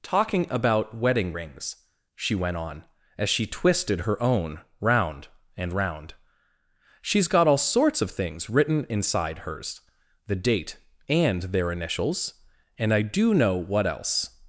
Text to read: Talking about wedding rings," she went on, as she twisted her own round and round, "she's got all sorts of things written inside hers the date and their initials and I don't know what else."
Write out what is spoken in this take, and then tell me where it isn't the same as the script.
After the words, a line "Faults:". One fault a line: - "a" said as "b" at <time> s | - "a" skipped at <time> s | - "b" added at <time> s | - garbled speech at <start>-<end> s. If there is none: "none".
Talking about wedding rings," she went on, as she twisted her own round and round, "she's got all sorts of things written inside hers the date and their initials and I do know what else."
Faults:
- "don't" said as "do" at 13.0 s